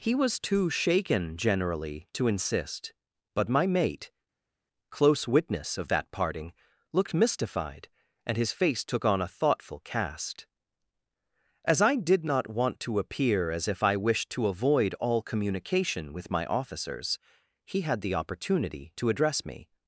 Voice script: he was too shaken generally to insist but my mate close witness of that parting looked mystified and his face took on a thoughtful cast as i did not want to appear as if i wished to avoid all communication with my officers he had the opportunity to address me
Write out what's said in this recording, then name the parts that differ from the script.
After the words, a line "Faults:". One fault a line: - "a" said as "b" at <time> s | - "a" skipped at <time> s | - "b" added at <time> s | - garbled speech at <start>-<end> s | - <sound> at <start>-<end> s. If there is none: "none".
he was too shaken generally to insist but my mate close witness of that parting looked mystified and his face took on a thoughtful cast as i did not want to appear as if i wished to avoid all communication with my officers he had the opportunity to address me
Faults:
none